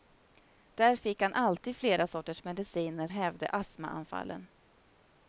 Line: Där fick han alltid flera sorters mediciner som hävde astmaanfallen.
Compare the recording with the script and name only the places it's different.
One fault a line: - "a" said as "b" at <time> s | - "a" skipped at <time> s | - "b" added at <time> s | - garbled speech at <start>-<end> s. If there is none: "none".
- "som" skipped at 3.1 s